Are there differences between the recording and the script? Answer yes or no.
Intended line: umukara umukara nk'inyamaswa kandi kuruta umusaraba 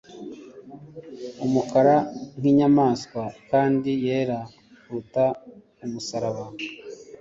yes